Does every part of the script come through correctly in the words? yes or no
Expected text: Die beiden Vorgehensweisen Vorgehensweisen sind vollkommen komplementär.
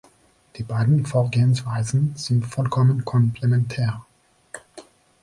no